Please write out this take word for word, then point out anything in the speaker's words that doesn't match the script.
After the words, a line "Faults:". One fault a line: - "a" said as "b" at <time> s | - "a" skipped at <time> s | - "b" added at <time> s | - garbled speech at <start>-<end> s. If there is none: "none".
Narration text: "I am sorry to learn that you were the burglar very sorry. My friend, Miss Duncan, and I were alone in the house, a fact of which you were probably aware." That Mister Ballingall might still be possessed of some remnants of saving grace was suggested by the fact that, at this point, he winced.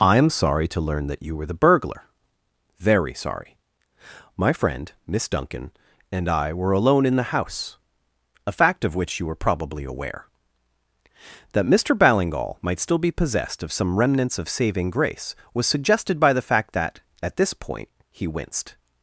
"I am sorry to learn that you were the burglar very sorry. My friend, Miss Duncan, and I were alone in the house, a fact of which you were probably aware." That Mister Ballingall might still be possessed of some remnants of saving grace was suggested by the fact that, at this point, he winced.
Faults:
none